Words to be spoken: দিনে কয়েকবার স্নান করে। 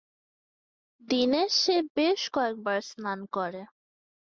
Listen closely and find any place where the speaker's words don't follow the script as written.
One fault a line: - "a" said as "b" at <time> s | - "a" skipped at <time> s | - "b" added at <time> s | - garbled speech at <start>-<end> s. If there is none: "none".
- "সে বেশ" added at 1.6 s